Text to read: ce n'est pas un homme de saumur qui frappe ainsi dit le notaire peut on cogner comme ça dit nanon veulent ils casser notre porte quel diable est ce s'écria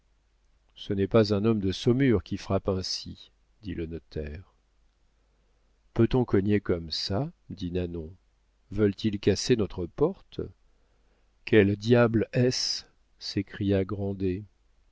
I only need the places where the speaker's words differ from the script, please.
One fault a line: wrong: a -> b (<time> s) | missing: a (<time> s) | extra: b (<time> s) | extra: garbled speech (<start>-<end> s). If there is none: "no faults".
no faults